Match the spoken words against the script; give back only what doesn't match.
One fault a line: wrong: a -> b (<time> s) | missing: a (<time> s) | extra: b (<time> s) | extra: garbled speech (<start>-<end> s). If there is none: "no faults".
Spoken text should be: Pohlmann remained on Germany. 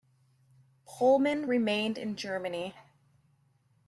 wrong: on -> in (2.0 s)